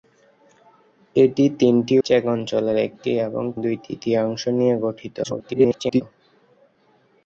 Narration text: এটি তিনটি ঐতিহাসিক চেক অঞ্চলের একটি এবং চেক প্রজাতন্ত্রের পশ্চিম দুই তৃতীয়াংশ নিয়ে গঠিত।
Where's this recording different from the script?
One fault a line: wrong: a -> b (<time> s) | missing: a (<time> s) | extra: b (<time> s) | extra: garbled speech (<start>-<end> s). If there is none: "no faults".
missing: ঐতিহাসিক (1.9 s)
missing: চেক প্রজাতন্ত্রের পশ্চিম (3.4 s)
extra: garbled speech (5.2-6.0 s)